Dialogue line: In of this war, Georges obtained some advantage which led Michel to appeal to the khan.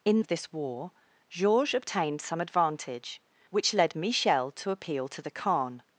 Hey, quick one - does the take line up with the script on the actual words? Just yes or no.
yes